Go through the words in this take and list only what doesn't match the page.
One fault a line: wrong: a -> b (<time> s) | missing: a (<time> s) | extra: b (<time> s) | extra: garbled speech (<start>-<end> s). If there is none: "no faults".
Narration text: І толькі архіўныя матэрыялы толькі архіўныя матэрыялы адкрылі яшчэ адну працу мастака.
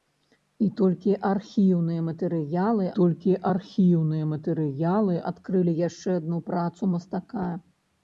no faults